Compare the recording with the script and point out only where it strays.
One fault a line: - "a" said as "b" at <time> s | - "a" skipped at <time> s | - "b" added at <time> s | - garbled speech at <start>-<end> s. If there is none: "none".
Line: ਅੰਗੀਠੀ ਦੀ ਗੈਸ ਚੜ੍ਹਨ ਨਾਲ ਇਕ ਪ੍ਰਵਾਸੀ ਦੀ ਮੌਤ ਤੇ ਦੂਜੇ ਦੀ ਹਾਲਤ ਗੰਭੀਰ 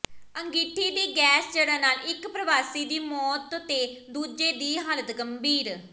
none